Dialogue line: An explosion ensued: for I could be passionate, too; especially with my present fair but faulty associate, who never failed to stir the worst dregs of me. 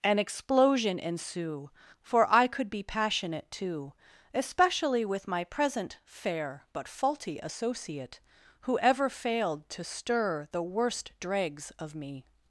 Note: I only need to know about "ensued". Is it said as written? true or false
false